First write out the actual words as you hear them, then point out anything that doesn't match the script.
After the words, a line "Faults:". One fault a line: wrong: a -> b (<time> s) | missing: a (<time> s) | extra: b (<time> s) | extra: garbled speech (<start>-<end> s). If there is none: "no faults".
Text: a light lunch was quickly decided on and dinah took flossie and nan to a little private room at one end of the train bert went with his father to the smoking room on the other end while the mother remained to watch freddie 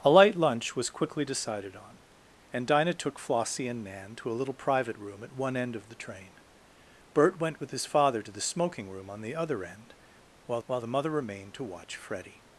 a light lunch was quickly decided on and dinah took flossie and nan to a little private room at one end of the train bert went with his father to the smoking room on the other end while while the mother remained to watch freddie
Faults:
extra: while (10.7 s)